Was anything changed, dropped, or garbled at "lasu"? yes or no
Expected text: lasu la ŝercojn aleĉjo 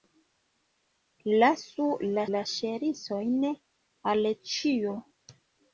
no